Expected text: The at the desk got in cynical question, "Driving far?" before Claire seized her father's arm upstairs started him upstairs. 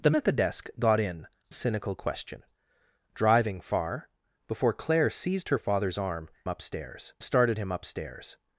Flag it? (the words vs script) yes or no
no